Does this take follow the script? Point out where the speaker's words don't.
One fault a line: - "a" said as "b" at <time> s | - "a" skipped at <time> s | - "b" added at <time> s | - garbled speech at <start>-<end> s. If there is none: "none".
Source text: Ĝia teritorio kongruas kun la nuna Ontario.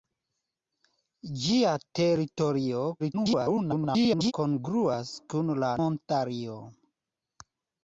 - garbled speech at 3.0-4.3 s
- "nuna" skipped at 5.7 s